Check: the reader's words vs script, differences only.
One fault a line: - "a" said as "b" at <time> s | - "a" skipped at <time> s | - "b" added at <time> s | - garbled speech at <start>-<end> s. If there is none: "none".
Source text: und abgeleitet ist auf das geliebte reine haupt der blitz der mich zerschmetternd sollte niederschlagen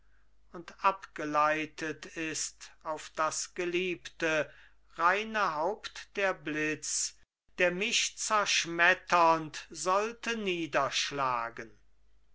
none